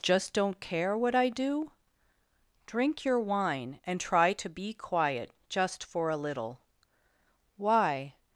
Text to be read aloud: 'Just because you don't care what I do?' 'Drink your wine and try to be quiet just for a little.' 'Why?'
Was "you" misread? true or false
true